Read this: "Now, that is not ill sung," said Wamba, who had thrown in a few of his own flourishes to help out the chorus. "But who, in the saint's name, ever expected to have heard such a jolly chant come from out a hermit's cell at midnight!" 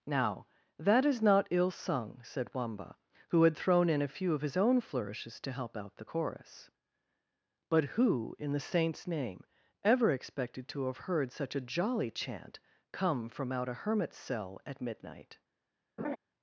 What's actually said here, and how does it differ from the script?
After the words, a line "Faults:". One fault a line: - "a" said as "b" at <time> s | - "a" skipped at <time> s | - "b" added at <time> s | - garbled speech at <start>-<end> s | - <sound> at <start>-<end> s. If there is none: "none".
"Now, that is not ill sung," said Wamba, who had thrown in a few of his own flourishes to help out the chorus. "But who, in the saint's name, ever expected to have heard such a jolly chant come from out a hermit's cell at midnight!"
Faults:
- laugh at 16.0-16.2 s